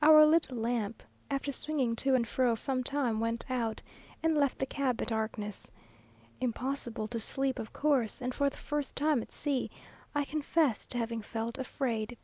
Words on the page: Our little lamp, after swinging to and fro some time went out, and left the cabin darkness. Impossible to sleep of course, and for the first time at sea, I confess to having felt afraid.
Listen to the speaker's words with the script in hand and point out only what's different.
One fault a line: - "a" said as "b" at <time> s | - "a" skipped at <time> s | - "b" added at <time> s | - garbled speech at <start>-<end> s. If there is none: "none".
none